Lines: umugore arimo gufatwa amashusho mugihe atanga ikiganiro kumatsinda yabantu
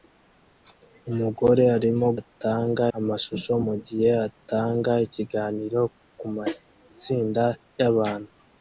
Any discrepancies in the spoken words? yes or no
yes